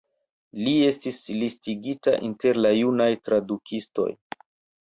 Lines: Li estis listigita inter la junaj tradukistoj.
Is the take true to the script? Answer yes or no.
yes